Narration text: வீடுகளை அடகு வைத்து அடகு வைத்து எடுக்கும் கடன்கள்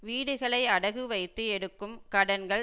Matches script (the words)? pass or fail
fail